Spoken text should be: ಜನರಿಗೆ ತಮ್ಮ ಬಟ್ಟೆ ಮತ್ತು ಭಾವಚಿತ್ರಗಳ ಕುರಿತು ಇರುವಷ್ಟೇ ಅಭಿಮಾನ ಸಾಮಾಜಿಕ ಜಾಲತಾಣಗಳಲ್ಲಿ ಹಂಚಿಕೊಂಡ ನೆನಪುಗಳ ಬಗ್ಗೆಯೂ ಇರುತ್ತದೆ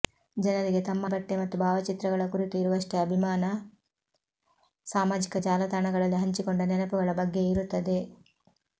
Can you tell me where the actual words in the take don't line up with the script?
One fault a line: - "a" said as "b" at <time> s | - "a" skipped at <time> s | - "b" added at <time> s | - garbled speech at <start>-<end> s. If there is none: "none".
none